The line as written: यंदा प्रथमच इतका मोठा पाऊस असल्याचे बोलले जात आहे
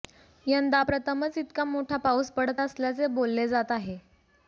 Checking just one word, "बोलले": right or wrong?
right